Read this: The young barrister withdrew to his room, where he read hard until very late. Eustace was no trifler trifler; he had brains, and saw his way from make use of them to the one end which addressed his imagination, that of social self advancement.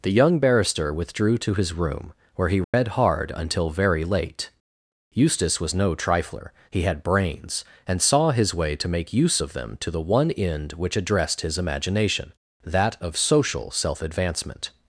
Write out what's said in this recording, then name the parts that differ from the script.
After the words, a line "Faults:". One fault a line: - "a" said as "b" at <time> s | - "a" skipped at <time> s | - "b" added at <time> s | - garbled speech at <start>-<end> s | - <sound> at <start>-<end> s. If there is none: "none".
The young barrister withdrew to his room, where he read hard until very late. Eustace was no trifler; he had brains, and saw his way to make use of them to the one end which addressed his imagination, that of social self advancement.
Faults:
- dropout at 2.6-2.7 s
- "trifler" skipped at 6.5 s
- "from" said as "to" at 8.8 s